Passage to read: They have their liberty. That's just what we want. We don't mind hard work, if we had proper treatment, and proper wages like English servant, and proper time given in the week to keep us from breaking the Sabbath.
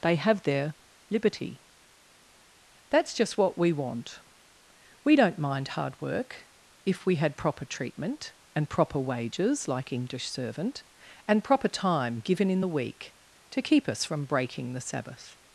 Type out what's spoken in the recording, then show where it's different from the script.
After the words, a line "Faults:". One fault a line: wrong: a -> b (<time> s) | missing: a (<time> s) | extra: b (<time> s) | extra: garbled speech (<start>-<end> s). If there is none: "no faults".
They have their liberty. That's just what we want. We don't mind hard work, if we had proper treatment, and proper wages like English servant, and proper time given in the week to keep us from breaking the Sabbath.
Faults:
no faults